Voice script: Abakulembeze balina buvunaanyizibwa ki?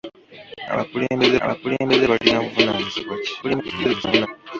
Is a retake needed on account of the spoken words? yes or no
yes